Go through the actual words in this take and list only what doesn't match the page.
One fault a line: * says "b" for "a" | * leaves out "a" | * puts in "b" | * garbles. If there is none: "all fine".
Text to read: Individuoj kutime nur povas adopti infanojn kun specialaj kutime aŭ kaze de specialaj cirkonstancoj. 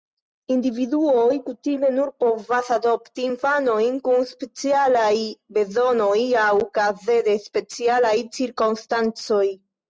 * says "bezonoj" for "kutime"